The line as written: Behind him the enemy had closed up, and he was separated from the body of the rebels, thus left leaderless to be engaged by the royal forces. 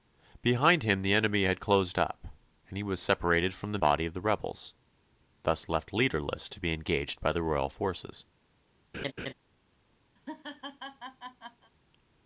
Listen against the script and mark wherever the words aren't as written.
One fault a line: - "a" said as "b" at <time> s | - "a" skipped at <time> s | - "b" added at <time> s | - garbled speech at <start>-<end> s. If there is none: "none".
none